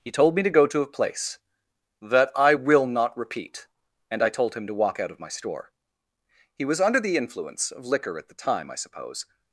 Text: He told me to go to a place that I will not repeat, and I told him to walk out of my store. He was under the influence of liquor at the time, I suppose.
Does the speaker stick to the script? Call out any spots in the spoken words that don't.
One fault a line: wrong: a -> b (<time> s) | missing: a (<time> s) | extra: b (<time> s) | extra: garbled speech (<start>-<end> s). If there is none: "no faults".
no faults